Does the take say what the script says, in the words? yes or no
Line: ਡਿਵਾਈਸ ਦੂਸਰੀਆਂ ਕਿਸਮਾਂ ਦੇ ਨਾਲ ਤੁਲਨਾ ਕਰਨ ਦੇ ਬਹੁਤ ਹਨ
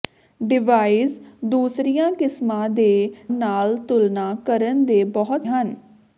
yes